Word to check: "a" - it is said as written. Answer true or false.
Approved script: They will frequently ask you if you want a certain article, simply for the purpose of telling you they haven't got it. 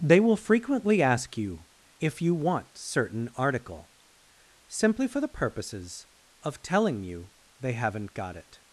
false